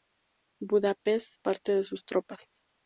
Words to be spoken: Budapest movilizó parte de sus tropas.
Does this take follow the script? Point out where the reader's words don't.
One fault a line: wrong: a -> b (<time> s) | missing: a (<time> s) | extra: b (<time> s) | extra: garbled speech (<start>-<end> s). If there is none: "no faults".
missing: movilizó (1.4 s)